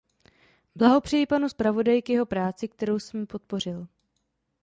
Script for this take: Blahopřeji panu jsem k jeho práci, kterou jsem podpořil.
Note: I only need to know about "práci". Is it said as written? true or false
true